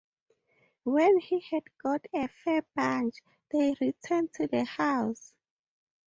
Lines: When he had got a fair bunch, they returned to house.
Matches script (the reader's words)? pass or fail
fail